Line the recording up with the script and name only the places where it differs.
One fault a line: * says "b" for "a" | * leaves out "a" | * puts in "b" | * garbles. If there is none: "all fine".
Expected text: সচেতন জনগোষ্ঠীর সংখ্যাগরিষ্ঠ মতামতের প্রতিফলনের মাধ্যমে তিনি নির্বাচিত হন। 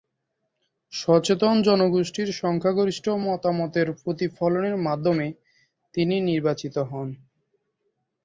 all fine